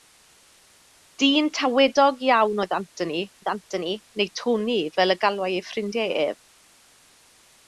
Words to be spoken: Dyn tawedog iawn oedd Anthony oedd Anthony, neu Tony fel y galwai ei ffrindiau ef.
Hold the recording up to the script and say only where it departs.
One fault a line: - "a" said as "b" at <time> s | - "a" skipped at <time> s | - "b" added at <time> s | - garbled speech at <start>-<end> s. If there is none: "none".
none